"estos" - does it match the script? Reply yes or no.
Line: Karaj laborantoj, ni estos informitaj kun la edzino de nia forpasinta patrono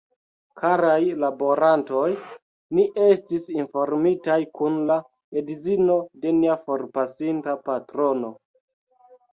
no